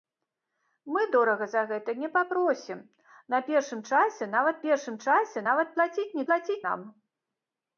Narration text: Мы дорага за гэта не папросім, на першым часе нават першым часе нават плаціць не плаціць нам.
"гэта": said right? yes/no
yes